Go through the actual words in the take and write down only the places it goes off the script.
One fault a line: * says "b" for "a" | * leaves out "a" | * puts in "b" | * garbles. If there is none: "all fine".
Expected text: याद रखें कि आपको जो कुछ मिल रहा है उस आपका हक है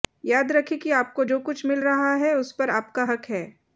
* puts in "पर"